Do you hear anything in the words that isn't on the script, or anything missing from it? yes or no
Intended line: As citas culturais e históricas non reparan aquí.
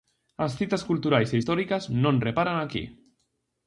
no